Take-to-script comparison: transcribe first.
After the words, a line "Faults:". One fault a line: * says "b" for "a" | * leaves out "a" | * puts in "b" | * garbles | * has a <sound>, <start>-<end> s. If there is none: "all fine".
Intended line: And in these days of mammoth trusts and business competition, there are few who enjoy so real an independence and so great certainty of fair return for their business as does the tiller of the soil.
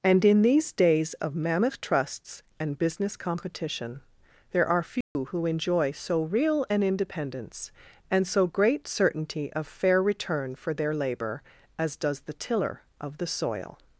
And in these days of mammoth trusts and business competition, there are few who enjoy so real an independence and so great certainty of fair return for their labor as does the tiller of the soil.
Faults:
* has a dropout, 5.0-5.2 s
* says "labor" for "business"